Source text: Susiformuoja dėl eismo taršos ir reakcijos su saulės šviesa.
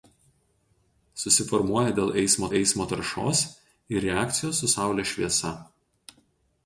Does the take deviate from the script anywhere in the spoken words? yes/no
yes